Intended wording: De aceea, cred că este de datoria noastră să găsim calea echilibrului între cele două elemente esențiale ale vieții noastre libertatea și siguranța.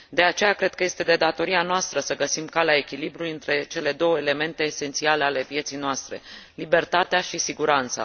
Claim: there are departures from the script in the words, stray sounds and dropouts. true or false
false